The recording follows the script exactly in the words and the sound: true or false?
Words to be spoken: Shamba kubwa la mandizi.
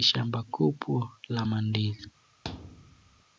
false